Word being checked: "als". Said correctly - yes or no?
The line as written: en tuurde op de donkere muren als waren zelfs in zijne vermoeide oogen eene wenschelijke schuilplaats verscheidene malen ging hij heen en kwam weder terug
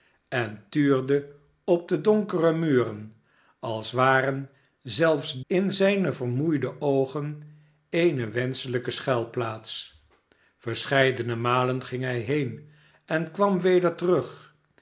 yes